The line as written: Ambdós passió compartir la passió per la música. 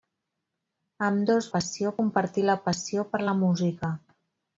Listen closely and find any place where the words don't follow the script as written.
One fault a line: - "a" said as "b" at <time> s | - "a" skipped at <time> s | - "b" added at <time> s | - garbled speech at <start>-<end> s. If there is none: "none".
none